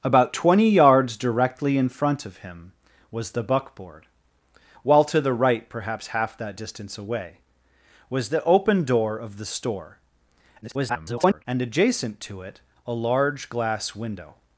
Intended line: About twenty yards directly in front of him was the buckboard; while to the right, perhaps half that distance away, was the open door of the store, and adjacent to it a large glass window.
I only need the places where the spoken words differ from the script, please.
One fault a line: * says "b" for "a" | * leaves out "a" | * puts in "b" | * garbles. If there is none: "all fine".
* garbles